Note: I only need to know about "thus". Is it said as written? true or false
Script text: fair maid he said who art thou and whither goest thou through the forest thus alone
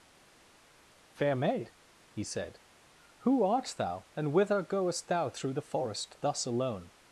true